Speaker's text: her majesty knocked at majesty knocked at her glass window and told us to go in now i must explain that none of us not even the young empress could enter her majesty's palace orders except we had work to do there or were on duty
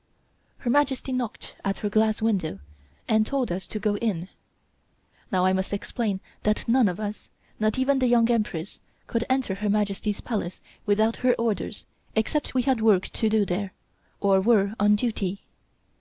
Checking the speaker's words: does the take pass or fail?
fail